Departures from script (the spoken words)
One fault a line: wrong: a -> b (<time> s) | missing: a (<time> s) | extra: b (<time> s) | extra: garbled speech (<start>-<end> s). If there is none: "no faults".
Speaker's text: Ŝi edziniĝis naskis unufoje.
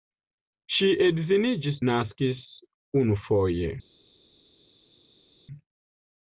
no faults